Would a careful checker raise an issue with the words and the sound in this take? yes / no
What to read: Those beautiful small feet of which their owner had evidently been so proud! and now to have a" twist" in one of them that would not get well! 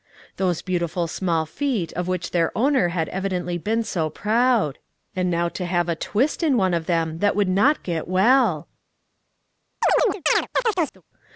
yes